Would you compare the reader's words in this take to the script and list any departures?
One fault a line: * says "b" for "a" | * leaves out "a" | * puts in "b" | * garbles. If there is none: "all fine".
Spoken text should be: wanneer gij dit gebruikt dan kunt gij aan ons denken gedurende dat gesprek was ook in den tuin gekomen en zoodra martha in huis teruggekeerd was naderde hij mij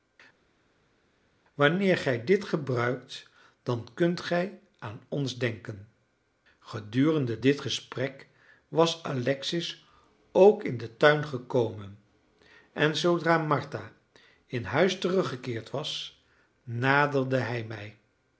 * says "dit" for "dat"
* puts in "alexis"